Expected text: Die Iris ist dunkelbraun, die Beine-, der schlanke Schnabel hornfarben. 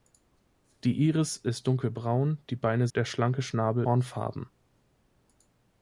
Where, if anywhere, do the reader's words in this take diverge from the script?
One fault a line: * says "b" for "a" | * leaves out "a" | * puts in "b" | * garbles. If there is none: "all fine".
all fine